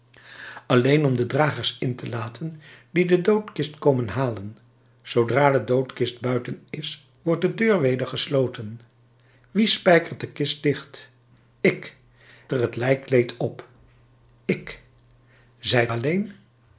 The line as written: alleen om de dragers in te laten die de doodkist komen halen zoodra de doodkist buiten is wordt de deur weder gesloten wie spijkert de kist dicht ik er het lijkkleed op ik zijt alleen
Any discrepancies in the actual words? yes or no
no